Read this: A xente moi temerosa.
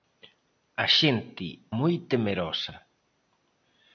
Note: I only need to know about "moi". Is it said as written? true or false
true